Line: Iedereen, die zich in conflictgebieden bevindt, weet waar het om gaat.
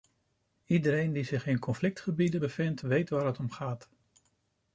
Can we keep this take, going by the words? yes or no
yes